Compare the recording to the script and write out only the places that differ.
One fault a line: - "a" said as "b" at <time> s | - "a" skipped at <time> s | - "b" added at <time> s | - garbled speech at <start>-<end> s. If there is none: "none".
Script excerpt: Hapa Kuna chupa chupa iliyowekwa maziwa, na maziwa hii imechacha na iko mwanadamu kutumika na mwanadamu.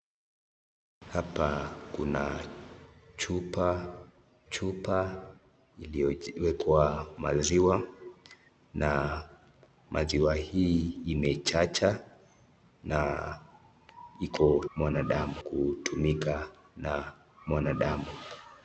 none